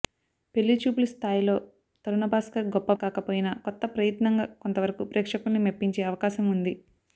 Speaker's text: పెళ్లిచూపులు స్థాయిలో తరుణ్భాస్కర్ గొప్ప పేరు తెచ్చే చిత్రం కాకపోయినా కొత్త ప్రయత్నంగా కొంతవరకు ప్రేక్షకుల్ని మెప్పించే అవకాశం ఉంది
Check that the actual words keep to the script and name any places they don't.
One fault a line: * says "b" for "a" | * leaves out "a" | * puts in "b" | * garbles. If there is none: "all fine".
* leaves out "పేరు తెచ్చే చిత్రం"